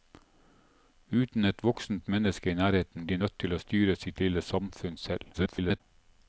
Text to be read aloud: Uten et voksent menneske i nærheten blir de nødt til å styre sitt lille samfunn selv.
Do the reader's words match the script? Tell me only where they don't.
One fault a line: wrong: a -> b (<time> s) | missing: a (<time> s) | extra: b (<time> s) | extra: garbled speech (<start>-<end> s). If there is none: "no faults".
missing: blir (3.1 s)
extra: garbled speech (5.3-5.8 s)